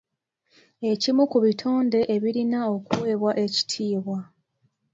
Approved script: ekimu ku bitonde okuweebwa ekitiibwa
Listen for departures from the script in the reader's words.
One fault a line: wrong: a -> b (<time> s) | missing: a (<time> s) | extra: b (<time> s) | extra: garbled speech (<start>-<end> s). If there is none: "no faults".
extra: ebirina (2.1 s)